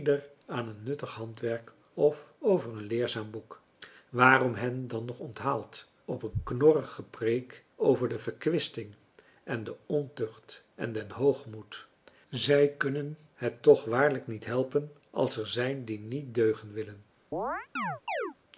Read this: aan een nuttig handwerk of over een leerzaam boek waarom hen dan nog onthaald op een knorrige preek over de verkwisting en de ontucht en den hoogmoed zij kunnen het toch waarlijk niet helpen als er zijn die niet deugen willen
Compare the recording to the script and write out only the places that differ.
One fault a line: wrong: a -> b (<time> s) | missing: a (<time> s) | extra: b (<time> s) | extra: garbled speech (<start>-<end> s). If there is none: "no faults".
no faults